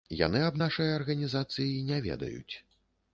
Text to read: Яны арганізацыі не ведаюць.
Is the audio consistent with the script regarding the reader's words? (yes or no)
no